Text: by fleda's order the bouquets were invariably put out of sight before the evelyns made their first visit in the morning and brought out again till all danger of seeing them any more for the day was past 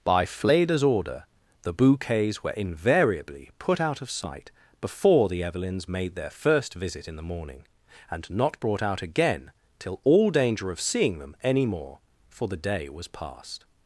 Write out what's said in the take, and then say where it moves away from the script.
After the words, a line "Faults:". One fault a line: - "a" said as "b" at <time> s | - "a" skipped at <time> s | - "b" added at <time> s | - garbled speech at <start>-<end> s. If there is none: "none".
by fleda's order the bouquets were invariably put out of sight before the evelyns made their first visit in the morning and not brought out again till all danger of seeing them any more for the day was past
Faults:
- "not" added at 8.3 s